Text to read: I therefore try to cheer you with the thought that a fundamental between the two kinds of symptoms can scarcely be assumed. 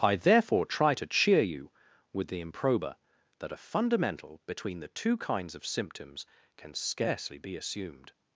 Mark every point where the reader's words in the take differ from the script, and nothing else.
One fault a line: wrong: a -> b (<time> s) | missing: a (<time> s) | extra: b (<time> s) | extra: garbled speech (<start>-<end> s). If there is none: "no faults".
wrong: thought -> improba (2.4 s)